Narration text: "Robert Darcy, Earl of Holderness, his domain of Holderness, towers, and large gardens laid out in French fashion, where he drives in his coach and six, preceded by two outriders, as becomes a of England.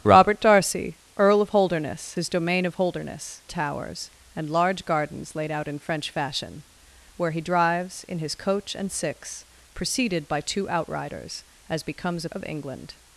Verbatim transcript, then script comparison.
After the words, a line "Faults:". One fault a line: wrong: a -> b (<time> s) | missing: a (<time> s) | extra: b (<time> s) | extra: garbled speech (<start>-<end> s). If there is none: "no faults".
"Robert Darcy, Earl of Holderness, his domain of Holderness, towers, and large gardens laid out in French fashion, where he drives in his coach and six, preceded by two outriders, as becomes a of England.
Faults:
no faults